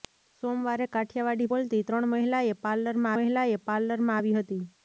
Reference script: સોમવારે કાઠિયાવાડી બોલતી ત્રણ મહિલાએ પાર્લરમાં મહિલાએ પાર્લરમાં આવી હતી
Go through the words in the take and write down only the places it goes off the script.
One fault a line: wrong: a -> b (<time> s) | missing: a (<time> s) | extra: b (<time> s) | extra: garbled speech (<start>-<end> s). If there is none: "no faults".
no faults